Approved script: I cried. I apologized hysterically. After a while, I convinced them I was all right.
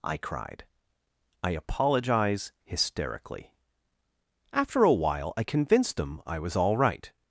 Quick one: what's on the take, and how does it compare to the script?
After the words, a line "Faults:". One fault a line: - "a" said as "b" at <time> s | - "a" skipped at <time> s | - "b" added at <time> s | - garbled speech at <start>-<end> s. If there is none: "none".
I cried. I apologize hysterically. After a while, I convinced them I was all right.
Faults:
- "apologized" said as "apologize" at 1.5 s